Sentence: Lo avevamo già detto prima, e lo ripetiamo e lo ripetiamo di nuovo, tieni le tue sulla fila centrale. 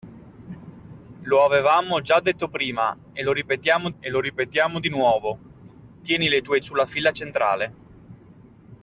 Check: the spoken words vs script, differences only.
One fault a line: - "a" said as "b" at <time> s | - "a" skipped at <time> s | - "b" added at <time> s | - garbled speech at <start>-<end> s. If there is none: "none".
none